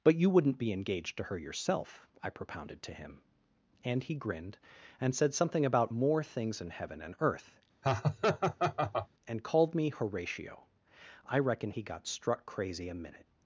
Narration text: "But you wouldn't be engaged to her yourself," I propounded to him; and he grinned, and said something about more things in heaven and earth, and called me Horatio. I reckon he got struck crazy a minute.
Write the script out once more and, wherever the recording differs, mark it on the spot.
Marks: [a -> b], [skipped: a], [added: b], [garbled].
"But you wouldn't be engaged to her yourself," I propounded to him; and he grinned, and said something about more things in heaven and earth, and called me Horatio. I reckon he got struck crazy a minute.